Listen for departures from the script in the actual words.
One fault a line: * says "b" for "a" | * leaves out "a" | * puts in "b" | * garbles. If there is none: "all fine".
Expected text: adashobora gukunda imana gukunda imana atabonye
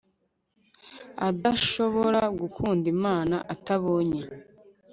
* leaves out "gukunda imana"